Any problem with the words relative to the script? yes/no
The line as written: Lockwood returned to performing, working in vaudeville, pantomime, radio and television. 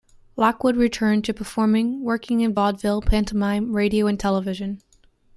no